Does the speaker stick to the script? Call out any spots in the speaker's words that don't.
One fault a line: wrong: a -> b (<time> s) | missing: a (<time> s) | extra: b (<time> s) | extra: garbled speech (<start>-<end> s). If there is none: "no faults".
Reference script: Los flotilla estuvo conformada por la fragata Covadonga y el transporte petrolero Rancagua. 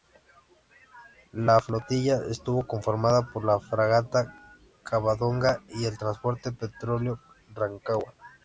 wrong: Los -> La (1.3 s)